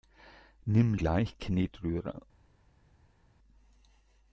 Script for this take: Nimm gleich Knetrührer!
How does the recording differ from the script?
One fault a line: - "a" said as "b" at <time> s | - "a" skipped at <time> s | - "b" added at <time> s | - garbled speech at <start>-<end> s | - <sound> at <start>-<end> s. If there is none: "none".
none